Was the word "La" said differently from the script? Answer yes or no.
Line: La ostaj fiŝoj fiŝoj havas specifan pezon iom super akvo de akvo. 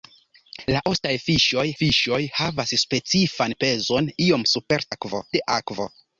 no